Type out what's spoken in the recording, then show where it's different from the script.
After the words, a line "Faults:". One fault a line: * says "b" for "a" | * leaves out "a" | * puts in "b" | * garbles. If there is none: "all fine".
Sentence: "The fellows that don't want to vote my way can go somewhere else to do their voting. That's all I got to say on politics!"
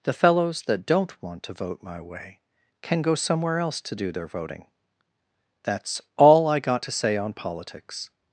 "The fellows that don't want to vote my way can go somewhere else to do their voting. That's all I got to say on politics!"
Faults:
all fine